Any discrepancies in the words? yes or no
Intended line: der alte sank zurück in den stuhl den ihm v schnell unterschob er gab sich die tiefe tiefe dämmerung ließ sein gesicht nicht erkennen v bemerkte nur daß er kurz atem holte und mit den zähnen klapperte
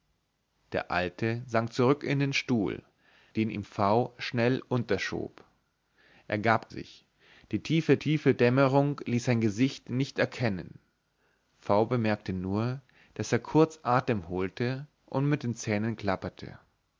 no